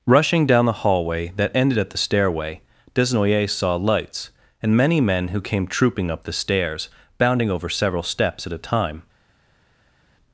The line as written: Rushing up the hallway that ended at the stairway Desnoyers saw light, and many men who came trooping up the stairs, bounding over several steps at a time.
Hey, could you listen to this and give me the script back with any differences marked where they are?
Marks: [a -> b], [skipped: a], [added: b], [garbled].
Rushing [up -> down] the hallway that ended at the stairway Desnoyers saw [light, -> lights] and many men who came trooping up the stairs, bounding over several steps at a time.